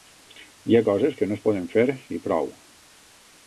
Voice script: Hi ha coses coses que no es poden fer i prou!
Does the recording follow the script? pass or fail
fail